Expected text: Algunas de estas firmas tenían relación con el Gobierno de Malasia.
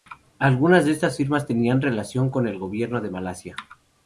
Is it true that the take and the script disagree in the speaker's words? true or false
false